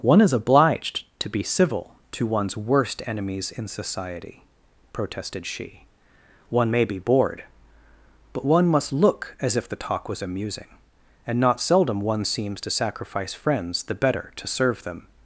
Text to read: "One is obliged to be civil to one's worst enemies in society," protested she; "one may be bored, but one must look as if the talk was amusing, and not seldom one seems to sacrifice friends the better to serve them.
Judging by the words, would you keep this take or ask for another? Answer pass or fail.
pass